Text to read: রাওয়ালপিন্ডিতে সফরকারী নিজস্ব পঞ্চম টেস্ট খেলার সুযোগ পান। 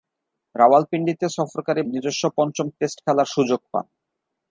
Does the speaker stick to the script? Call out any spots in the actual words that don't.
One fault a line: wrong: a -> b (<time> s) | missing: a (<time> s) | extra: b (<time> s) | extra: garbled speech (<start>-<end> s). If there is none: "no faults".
no faults